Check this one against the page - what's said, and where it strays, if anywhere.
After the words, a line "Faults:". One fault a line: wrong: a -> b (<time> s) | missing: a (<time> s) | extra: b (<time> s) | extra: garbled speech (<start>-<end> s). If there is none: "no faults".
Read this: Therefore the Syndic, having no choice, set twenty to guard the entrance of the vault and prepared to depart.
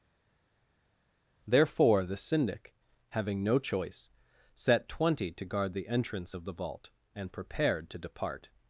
Therefore the Syndic, having no choice, set twenty to guard the entrance of the vault and prepared to depart.
Faults:
no faults